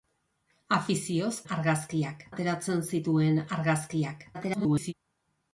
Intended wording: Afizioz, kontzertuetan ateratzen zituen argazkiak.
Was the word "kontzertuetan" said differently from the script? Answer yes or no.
yes